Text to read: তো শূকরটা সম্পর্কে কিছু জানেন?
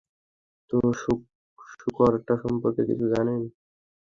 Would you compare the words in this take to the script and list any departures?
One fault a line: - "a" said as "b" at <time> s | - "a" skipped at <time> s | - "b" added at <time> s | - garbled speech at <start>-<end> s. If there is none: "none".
none